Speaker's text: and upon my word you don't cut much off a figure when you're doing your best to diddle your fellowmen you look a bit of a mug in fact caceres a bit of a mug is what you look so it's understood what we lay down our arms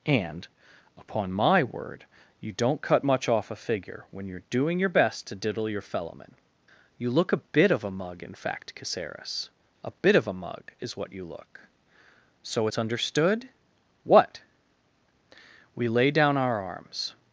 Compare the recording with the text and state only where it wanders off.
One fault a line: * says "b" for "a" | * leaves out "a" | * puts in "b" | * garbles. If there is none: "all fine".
all fine